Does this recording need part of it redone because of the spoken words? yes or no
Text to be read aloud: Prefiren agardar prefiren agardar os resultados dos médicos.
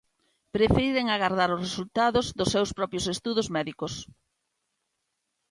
yes